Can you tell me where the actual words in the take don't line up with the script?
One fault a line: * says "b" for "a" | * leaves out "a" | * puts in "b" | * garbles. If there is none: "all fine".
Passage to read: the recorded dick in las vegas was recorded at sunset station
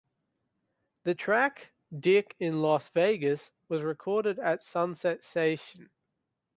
* says "track" for "recorded"